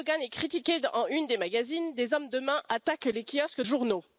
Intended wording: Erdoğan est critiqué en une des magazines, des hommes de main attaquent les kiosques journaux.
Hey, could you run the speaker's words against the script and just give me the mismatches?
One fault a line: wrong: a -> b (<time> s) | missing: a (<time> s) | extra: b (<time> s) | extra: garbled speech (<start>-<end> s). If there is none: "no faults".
no faults